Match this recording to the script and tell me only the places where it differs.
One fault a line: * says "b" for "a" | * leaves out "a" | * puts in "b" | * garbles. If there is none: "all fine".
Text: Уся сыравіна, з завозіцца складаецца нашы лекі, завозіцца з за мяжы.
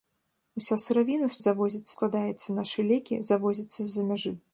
all fine